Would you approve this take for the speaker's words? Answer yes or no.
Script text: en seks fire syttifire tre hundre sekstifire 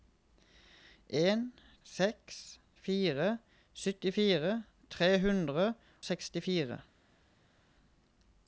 yes